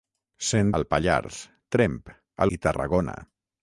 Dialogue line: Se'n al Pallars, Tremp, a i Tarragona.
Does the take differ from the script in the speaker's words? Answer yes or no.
no